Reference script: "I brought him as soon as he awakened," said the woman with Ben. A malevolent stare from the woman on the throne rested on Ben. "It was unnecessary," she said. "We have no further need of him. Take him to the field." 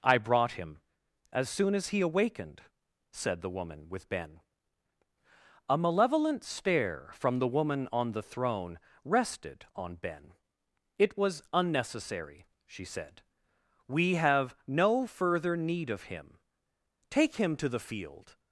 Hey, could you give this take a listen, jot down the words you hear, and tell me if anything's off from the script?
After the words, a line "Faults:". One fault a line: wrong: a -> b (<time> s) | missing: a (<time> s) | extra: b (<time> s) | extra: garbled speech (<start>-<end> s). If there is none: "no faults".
"I brought him as soon as he awakened," said the woman with Ben. A malevolent stare from the woman on the throne rested on Ben. "It was unnecessary," she said. "We have no further need of him. Take him to the field."
Faults:
no faults